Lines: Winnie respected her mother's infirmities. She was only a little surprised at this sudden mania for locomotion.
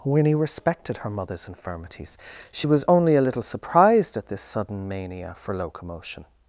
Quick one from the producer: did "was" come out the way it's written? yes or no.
yes